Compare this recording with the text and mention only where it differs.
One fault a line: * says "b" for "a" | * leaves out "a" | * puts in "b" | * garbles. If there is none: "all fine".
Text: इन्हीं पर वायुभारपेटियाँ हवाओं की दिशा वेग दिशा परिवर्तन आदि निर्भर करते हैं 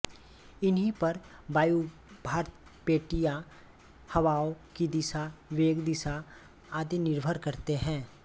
* leaves out "परिवर्तन"